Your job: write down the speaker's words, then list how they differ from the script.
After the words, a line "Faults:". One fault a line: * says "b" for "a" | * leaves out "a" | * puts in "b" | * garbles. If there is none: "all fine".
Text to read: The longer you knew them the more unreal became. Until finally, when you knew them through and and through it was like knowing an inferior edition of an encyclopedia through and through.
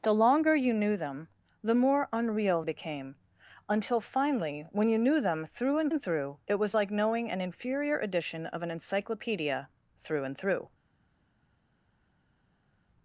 The longer you knew them the more unreal became. Until finally, when you knew them through and and through it was like knowing an inferior edition of an encyclopedia through and through.
Faults:
all fine